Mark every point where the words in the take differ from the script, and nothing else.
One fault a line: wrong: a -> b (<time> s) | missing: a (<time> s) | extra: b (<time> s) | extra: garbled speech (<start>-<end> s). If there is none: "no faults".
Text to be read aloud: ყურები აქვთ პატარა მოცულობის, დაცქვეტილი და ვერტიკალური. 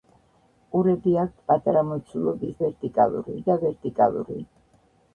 wrong: დაცქვეტილი -> ვერტიკალური (2.6 s)